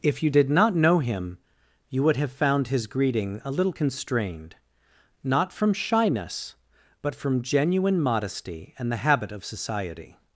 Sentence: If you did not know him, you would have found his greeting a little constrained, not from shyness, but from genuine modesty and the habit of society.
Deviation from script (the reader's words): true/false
false